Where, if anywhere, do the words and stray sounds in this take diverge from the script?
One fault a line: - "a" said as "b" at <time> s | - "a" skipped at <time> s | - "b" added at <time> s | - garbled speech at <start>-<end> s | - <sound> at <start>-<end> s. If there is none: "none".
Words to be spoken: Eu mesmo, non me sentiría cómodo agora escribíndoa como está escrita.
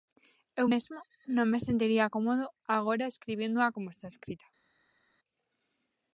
none